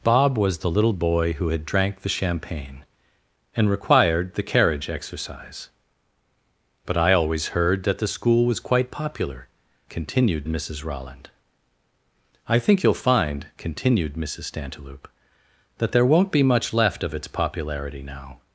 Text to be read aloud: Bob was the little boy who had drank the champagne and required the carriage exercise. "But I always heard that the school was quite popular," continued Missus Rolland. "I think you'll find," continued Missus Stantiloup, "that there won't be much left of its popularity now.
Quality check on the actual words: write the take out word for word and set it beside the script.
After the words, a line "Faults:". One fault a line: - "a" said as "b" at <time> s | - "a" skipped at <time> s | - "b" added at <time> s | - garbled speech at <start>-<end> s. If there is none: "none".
Bob was the little boy who had drank the champagne and required the carriage exercise. "But I always heard that the school was quite popular," continued Missus Rolland. "I think you'll find," continued Missus Stantiloup, "that there won't be much left of its popularity now.
Faults:
none